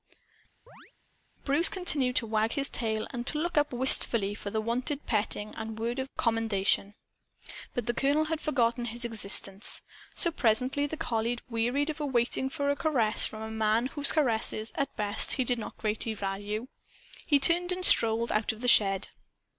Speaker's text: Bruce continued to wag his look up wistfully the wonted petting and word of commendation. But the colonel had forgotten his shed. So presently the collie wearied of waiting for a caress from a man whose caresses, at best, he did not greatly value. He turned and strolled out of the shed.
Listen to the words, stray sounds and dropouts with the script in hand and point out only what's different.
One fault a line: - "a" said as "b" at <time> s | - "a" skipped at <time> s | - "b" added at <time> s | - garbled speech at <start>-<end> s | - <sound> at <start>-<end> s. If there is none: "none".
- chirp at 0.7-0.9 s
- "tail and to" added at 2.7 s
- "for" added at 4.3 s
- "shed" said as "existence" at 9.0 s